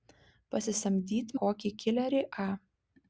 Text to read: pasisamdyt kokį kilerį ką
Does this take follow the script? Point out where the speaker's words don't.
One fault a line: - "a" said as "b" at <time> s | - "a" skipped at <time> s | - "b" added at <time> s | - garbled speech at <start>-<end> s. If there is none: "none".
none